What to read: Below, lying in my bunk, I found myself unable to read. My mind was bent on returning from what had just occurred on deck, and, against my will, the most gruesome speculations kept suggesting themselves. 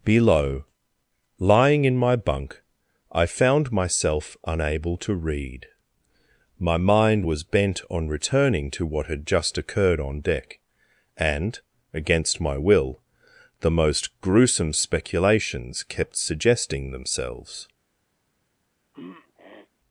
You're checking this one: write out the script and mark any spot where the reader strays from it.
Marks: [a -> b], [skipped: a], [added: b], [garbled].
Below, lying in my bunk, I found myself unable to read. My mind was bent on returning [from -> to] what had just occurred on deck, and, against my will, the most gruesome speculations kept suggesting themselves.